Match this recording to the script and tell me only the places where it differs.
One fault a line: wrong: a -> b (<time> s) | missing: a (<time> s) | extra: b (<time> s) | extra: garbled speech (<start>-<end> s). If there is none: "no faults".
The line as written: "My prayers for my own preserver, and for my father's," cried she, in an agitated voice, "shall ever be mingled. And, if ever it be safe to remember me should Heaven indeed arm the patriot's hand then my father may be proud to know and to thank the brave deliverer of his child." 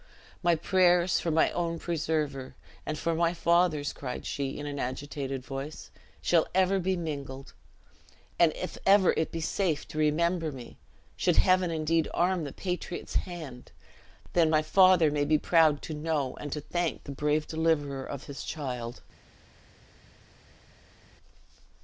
no faults